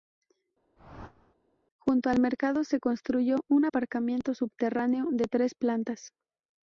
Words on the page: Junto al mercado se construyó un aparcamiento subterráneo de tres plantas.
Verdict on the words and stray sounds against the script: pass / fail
fail